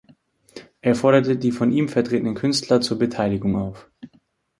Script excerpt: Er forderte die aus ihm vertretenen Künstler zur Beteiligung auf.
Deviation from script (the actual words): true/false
true